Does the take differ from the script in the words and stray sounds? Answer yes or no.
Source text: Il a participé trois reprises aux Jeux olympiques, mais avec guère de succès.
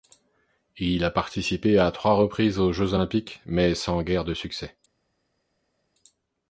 yes